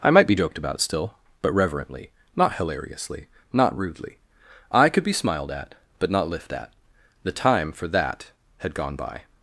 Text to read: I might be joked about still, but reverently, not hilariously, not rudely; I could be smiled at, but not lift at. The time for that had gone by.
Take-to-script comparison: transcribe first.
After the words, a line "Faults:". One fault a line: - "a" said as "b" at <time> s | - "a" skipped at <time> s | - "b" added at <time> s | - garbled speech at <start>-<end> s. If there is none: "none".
I might be joked about still, but reverently, not hilariously, not rudely; I could be smiled at, but not lift at. The time for that had gone by.
Faults:
none